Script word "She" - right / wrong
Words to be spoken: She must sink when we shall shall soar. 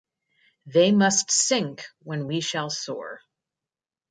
wrong